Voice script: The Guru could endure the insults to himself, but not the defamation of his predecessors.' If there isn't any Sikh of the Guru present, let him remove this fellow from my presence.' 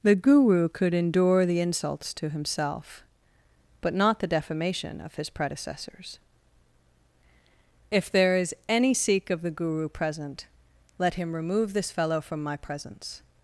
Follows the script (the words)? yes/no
no